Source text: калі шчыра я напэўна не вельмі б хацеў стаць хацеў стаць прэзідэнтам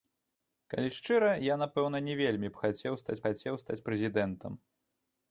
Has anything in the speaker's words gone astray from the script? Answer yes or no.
no